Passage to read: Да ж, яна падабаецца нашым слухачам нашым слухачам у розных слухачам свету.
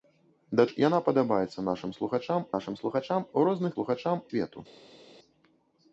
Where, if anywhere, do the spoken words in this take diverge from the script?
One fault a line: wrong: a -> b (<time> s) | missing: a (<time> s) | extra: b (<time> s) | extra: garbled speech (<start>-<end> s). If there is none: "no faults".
no faults